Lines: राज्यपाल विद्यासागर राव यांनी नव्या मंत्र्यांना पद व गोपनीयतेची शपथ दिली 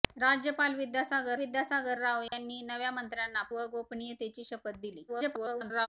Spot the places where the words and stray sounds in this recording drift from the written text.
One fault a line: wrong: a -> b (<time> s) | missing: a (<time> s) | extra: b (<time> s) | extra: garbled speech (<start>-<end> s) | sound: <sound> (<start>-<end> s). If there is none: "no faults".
extra: विद्यासागर (1.4 s)
sound: dropout (2.3-2.3 s)
missing: पद (3.4 s)
extra: garbled speech (5.1-5.9 s)